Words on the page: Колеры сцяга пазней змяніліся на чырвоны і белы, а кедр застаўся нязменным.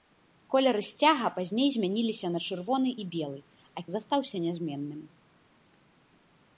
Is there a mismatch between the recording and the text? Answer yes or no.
yes